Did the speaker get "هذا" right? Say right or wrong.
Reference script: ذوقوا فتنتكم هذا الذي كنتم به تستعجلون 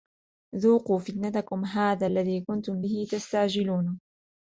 right